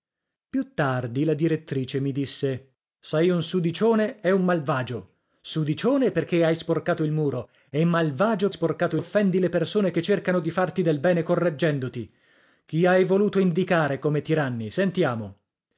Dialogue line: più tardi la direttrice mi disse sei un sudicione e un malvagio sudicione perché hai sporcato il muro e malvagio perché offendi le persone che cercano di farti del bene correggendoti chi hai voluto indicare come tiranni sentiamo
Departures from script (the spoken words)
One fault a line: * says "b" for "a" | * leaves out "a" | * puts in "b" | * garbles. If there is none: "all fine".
* says "sporcato" for "perché"